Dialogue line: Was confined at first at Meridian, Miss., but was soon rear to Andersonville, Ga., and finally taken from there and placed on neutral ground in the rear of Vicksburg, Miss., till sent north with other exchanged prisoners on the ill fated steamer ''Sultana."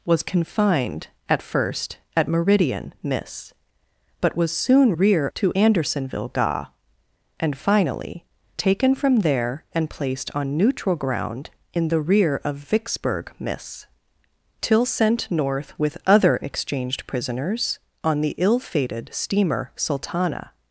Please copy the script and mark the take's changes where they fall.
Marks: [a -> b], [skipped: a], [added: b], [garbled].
Was confined at first at Meridian, Miss., but was soon rear to Andersonville, Ga., and finally taken from there and placed on neutral ground in the rear of Vicksburg, Miss., till sent north with other exchanged prisoners on the ill fated steamer ''Sultana."